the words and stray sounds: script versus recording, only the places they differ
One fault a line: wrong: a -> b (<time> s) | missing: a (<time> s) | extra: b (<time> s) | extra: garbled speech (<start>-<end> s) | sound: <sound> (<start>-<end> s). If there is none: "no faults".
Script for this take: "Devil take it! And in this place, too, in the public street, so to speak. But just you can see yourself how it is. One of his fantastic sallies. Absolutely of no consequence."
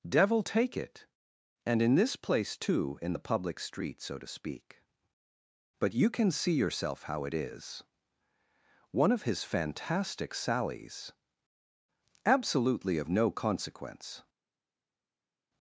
missing: just (5.9 s)